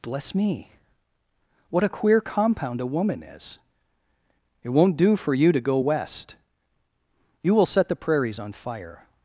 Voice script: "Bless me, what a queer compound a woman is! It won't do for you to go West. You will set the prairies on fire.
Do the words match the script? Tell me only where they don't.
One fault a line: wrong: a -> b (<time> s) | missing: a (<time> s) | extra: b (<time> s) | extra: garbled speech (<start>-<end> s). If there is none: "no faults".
no faults